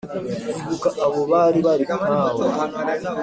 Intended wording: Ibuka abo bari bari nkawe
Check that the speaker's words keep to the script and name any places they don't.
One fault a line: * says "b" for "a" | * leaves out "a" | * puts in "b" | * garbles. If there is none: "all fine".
all fine